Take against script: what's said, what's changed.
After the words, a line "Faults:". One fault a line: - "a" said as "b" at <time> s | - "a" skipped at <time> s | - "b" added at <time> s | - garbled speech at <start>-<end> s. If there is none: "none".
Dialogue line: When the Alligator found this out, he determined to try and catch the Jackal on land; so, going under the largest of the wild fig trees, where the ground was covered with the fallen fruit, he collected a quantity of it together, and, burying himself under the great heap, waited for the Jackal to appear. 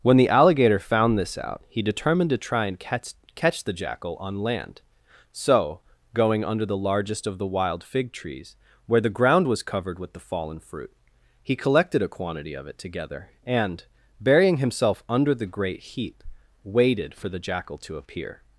When the Alligator found this out, he determined to try and catch catch the Jackal on land; so, going under the largest of the wild fig trees, where the ground was covered with the fallen fruit, he collected a quantity of it together, and, burying himself under the great heap, waited for the Jackal to appear.
Faults:
- "catch" added at 3.4 s